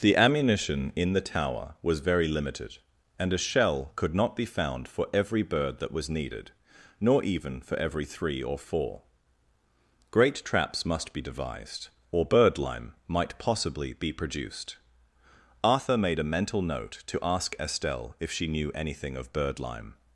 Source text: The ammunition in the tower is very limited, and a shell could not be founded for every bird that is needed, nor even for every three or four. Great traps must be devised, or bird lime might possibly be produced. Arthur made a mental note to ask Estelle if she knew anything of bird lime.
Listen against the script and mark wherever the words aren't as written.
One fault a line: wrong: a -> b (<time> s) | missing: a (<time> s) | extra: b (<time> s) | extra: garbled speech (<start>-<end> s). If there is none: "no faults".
wrong: is -> was (1.8 s)
wrong: founded -> found (4.5 s)
wrong: is -> was (5.9 s)